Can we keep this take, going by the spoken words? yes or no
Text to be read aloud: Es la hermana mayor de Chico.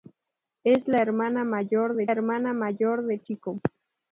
no